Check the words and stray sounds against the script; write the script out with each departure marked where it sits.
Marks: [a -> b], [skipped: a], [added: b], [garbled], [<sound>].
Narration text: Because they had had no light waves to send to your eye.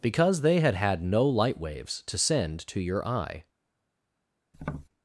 Because they had had no light waves to send to your eye. [tap]